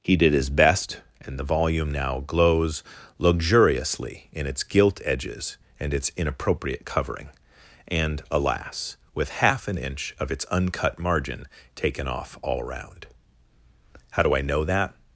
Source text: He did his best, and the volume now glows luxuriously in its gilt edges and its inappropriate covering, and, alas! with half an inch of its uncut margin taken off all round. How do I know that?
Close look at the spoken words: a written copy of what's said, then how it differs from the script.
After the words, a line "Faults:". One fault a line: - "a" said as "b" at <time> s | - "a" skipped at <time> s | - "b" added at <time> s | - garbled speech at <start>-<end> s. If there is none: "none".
He did his best, and the volume now glows luxuriously in its gilt edges and its inappropriate covering, and, alas! with half an inch of its uncut margin taken off all round. How do I know that?
Faults:
none